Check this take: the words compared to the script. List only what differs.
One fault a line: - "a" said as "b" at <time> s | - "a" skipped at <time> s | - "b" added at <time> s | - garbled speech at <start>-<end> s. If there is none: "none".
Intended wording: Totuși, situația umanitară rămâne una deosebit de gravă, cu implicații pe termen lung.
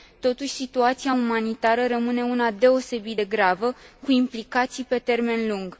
none